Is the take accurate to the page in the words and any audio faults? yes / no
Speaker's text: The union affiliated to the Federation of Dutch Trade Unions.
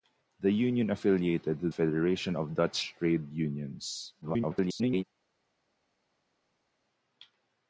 no